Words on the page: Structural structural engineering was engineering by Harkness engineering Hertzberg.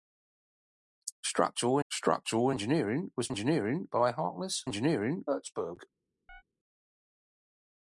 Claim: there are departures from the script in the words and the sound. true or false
true